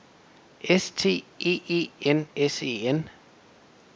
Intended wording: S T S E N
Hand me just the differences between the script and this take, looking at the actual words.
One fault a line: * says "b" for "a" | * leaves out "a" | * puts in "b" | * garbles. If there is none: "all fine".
* puts in "E E N"